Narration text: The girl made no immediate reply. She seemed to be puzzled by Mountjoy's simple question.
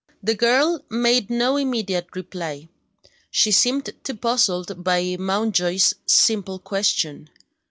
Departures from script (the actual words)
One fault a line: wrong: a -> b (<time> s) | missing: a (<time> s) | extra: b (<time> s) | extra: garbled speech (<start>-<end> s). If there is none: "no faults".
missing: be (4.1 s)